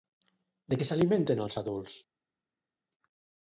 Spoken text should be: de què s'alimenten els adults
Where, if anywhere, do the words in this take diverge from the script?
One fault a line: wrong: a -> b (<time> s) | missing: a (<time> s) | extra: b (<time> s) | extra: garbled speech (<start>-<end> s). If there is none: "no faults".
no faults